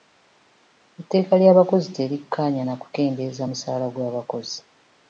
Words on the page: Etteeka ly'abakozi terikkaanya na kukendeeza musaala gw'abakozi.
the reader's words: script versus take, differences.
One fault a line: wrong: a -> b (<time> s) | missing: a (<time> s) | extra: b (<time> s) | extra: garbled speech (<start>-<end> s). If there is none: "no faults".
no faults